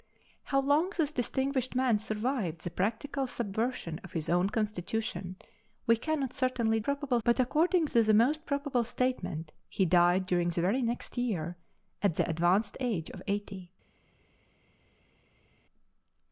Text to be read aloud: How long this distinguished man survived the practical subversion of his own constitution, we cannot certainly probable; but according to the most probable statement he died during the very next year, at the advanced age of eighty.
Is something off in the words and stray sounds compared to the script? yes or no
no